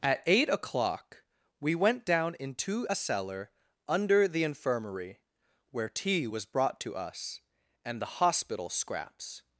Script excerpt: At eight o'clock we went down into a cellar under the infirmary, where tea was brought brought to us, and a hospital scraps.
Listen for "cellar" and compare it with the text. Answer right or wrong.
right